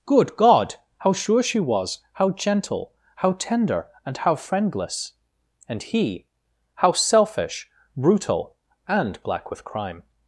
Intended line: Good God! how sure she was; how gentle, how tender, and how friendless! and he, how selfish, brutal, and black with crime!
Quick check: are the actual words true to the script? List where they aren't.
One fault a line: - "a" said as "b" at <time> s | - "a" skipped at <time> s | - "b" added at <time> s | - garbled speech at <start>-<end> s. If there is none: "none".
none